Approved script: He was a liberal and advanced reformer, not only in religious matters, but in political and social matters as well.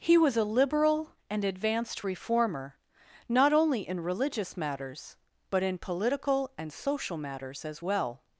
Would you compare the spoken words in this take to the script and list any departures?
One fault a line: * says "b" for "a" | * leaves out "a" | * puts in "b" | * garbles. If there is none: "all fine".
all fine